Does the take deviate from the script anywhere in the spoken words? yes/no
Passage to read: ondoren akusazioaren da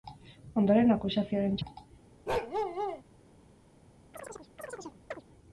no